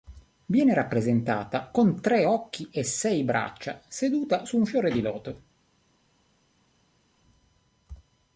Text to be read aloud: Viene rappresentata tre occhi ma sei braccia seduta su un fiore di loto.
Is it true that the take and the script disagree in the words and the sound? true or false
true